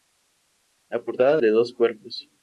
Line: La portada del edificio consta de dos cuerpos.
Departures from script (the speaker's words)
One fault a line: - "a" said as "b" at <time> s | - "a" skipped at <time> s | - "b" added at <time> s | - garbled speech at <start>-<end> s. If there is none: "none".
- "del edificio consta" skipped at 1.4 s